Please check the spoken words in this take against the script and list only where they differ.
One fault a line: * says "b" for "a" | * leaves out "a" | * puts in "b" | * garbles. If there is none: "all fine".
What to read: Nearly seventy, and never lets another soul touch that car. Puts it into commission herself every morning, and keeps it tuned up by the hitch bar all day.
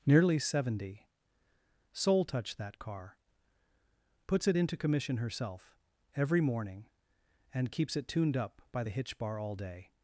* leaves out "and never lets another"